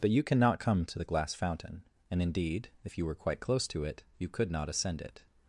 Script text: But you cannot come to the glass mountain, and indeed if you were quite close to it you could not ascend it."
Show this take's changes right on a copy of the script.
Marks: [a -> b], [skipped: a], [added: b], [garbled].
But you cannot come to the glass [mountain, -> fountain] and indeed if you were quite close to it you could not ascend it."